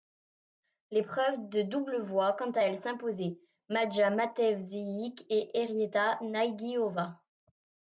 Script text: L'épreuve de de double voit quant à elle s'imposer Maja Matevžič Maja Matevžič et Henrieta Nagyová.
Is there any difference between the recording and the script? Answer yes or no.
yes